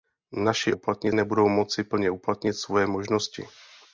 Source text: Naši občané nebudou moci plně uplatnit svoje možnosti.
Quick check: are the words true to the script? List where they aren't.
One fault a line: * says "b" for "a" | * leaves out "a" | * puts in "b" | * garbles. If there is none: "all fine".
* says "uplatnit" for "občané"